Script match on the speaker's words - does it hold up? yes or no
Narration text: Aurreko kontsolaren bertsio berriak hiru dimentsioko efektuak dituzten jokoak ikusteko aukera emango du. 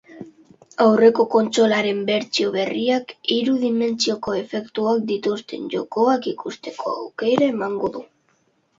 yes